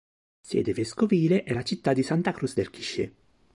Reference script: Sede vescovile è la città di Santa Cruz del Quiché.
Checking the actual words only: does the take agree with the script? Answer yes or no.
yes